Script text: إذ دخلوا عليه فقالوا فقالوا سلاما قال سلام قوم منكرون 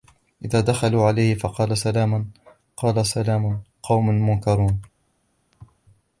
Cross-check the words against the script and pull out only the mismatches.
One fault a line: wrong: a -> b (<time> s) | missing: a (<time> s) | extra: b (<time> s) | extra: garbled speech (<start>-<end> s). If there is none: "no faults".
missing: فقالوا (1.8 s)